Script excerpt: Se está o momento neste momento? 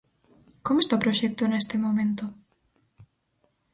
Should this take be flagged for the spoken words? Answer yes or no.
yes